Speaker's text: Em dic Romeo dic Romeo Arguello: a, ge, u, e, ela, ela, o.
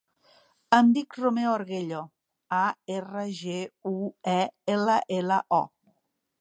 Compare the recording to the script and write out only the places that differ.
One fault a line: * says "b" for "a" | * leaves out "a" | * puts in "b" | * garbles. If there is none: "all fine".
* leaves out "dic Romeo"
* puts in "erra"